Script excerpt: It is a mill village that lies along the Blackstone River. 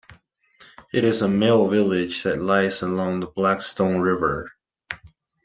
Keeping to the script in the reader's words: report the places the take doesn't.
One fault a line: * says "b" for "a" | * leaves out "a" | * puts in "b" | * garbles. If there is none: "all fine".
all fine